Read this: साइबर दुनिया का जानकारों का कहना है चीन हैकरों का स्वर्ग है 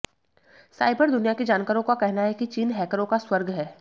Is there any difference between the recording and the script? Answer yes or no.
yes